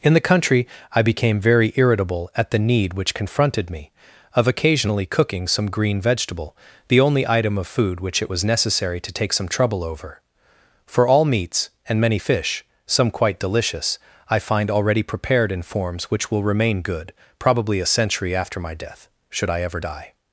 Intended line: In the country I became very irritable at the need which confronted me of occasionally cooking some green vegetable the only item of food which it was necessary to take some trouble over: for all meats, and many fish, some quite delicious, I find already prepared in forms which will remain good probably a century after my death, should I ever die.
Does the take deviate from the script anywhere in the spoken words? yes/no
no